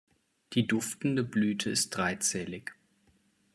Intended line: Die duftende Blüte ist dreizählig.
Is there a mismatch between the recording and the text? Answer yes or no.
no